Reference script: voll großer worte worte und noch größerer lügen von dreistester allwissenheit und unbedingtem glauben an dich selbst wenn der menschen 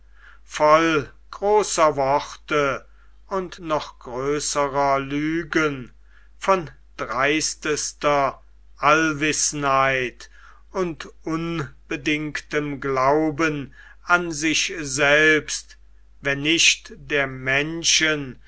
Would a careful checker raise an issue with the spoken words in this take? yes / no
yes